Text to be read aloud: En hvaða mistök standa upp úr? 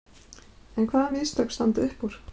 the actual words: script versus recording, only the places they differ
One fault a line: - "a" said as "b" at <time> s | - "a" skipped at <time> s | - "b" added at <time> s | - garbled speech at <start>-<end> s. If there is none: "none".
none